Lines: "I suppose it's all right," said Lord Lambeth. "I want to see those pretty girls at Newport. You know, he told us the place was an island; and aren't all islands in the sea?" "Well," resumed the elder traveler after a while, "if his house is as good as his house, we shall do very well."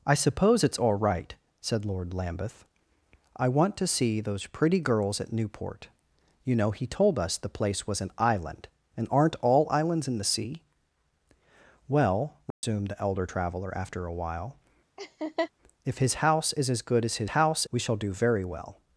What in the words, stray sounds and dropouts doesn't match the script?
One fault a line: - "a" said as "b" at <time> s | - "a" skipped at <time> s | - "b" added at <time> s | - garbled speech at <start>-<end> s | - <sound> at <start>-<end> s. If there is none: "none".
- dropout at 12.5-12.6 s
- laugh at 15.0-15.5 s